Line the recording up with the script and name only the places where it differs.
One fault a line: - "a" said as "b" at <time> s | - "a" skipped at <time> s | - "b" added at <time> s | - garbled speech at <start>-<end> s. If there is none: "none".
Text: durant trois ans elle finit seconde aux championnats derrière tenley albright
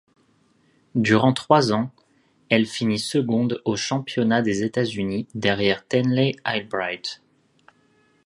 - "des états unis" added at 4.4 s